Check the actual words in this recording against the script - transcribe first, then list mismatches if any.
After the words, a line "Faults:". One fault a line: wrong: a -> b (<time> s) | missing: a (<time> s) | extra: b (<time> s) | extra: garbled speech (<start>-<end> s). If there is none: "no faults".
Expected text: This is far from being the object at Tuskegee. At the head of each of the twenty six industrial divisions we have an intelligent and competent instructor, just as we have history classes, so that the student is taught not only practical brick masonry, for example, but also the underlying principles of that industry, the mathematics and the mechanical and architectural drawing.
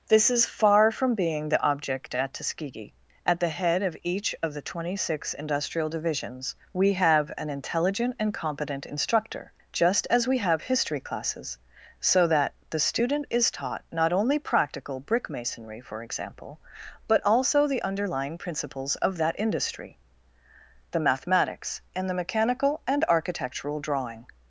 This is far from being the object at Tuskegee. At the head of each of the twenty six industrial divisions we have an intelligent and competent instructor, just as we have history classes, so that the student is taught not only practical brick masonry, for example, but also the underlying principles of that industry, the mathematics and the mechanical and architectural drawing.
Faults:
no faults